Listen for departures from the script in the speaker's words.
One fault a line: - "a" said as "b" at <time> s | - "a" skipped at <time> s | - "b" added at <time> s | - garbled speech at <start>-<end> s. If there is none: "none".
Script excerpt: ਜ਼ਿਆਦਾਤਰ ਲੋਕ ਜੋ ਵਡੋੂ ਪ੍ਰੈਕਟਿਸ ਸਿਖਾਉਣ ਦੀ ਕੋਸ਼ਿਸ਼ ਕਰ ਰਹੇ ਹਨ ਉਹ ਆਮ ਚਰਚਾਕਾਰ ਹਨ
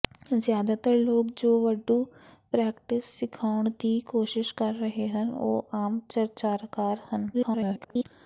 - garbled speech at 7.3-8.0 s